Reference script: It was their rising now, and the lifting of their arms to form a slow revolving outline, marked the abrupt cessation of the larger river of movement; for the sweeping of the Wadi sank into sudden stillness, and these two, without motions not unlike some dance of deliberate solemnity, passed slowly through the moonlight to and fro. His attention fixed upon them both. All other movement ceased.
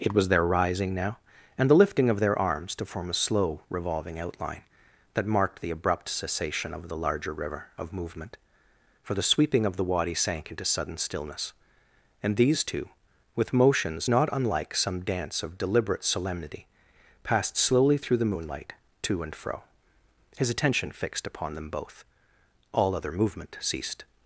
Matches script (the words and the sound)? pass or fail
fail